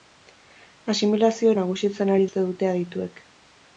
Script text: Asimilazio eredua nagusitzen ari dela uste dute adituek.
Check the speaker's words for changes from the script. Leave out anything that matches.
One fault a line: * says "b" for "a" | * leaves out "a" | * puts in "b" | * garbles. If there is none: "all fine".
* leaves out "eredua"
* leaves out "dela"